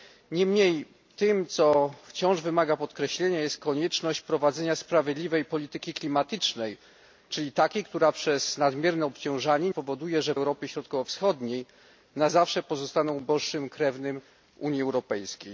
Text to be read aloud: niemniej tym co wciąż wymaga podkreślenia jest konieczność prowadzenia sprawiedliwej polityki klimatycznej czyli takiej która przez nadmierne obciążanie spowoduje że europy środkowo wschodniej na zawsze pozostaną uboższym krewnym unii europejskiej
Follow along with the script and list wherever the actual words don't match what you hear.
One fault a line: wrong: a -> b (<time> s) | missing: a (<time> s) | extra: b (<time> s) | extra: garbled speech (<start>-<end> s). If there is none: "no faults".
no faults